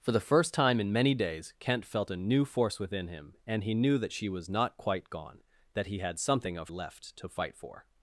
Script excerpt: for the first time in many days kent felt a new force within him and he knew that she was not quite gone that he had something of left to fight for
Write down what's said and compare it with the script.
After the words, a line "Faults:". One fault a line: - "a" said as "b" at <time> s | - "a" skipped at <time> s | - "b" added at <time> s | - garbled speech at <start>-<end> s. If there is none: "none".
for the first time in many days kent felt a new force within him and he knew that she was not quite gone that he had something of left to fight for
Faults:
none